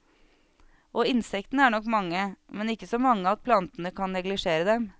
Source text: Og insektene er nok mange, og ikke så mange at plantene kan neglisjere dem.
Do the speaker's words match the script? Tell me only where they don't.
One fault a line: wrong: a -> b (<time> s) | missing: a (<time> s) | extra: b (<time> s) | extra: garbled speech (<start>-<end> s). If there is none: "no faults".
wrong: og -> men (2.5 s)